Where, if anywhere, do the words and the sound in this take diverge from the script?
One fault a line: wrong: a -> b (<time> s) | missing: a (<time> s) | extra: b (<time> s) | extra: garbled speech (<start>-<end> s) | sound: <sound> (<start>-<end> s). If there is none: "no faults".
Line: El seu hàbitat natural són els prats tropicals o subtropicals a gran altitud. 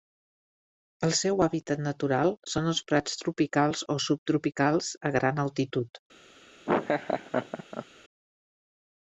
sound: laugh (6.7-7.9 s)